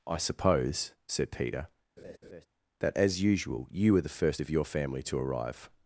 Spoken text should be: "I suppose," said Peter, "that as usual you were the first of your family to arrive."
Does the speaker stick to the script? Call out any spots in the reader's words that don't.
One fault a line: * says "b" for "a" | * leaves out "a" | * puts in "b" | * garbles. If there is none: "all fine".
all fine